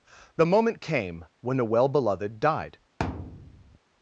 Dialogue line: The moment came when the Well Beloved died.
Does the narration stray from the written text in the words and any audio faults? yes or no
yes